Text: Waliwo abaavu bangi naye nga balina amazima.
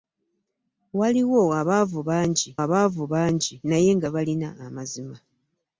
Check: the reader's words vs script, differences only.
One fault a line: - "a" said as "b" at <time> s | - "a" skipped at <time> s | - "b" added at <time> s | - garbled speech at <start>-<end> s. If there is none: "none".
- "abaavu bangi" added at 2.6 s